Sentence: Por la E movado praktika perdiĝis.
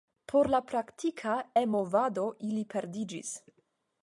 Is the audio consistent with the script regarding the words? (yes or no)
no